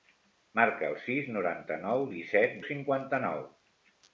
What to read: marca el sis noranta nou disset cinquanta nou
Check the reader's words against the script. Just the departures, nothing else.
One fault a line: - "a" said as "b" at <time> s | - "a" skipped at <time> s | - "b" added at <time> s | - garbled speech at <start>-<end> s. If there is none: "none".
none